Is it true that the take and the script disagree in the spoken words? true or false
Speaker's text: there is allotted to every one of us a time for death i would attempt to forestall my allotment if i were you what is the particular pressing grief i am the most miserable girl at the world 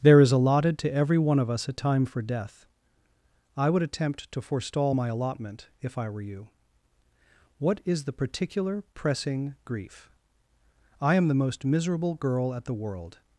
false